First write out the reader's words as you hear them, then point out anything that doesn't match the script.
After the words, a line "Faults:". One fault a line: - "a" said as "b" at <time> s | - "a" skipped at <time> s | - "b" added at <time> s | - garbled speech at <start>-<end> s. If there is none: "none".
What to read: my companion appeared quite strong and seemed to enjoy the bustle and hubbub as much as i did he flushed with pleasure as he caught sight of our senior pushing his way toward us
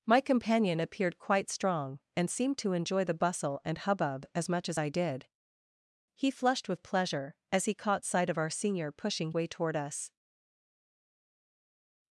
my companion appeared quite strong and seemed to enjoy the bustle and hubbub as much as i did he flushed with pleasure as he caught sight of our senior pushing way toward us
Faults:
- "his" skipped at 9.3 s